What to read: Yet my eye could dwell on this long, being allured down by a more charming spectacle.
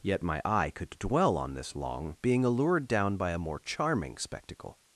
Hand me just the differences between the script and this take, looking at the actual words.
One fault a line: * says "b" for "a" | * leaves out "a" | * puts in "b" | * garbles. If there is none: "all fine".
all fine